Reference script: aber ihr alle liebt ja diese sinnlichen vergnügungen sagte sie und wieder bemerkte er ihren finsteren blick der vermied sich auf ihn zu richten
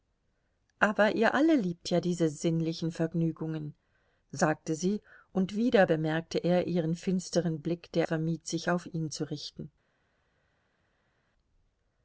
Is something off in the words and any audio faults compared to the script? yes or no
no